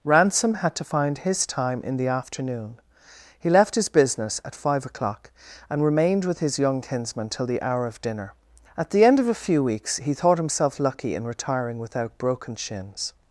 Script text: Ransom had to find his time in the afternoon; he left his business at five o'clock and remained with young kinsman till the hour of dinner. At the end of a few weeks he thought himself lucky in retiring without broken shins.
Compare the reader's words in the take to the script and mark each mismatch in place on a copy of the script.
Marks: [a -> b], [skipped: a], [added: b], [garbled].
Ransom had to find his time in the afternoon; he left his business at five o'clock and remained with [added: his] young kinsman till the hour of dinner. At the end of a few weeks he thought himself lucky in retiring without broken shins.